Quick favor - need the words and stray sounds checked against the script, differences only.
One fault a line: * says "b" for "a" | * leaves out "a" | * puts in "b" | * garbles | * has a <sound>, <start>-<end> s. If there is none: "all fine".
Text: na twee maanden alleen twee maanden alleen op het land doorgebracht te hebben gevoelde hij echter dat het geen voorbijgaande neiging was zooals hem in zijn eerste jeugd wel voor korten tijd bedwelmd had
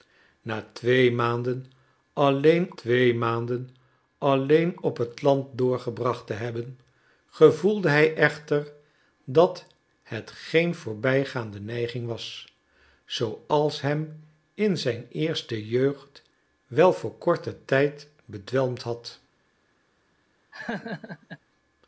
* has a laugh, 20.5-21.4 s